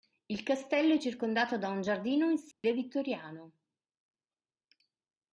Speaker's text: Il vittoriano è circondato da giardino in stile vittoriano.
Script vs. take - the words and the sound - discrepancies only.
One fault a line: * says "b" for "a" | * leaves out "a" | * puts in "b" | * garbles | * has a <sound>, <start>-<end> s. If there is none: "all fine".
* says "castello" for "vittoriano"
* puts in "un"
* has a dropout, 2.5-2.6 s